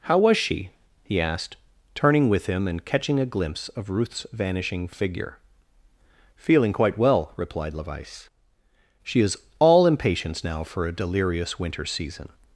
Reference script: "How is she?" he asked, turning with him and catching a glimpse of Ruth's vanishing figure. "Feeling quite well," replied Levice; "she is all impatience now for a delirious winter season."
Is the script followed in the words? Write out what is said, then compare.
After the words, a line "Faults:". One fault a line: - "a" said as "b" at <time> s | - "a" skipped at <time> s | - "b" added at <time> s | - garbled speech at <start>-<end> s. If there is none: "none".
"How was she?" he asked, turning with him and catching a glimpse of Ruth's vanishing figure. "Feeling quite well," replied Levice; "she is all impatience now for a delirious winter season."
Faults:
- "is" said as "was" at 0.2 s